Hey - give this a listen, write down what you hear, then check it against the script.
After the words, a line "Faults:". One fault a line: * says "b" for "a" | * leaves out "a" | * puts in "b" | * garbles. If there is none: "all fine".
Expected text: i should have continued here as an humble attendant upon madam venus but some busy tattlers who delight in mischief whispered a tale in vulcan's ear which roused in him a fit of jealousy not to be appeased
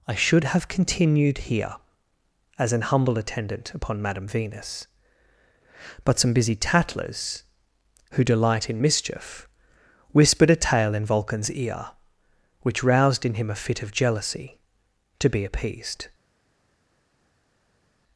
i should have continued here as an humble attendant upon madam venus but some busy tattlers who delight in mischief whispered a tale in vulcan's ear which roused in him a fit of jealousy to be appeased
Faults:
* leaves out "not"